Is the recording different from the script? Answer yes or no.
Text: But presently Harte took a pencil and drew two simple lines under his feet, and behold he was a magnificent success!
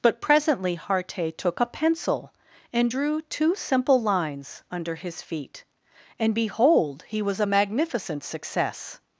no